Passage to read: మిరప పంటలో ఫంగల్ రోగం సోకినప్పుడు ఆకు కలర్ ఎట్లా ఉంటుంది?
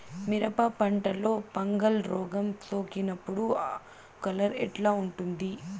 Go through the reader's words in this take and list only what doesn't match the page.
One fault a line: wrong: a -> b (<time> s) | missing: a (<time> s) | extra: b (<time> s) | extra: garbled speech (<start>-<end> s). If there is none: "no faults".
missing: ఆకు (3.5 s)